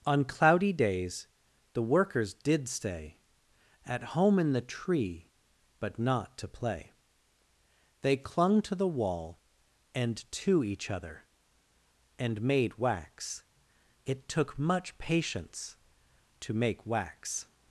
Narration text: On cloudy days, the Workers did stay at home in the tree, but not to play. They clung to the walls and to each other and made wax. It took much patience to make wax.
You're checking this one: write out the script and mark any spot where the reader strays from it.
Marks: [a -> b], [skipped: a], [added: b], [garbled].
On cloudy days, the Workers did stay at home in the tree, but not to play. They clung to the [walls -> wall] and to each other and made wax. It took much patience to make wax.